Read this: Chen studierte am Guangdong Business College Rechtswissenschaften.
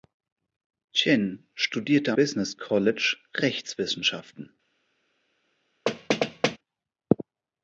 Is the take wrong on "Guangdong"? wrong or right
wrong